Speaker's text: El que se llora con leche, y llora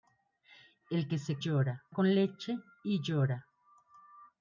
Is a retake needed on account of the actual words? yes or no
no